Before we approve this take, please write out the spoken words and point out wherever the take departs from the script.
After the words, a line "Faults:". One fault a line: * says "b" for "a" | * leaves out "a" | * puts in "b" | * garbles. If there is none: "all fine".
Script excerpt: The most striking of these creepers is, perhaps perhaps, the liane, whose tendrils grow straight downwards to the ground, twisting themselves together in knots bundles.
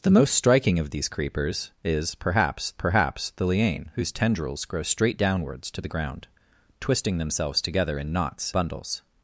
The most striking of these creepers is, perhaps perhaps, the liane, whose tendrils grow straight downwards to the ground, twisting themselves together in knots bundles.
Faults:
all fine